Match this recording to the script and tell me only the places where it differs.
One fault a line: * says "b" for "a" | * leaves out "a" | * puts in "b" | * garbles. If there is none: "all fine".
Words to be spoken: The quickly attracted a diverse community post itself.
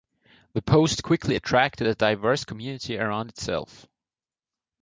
* puts in "post"
* says "around" for "post"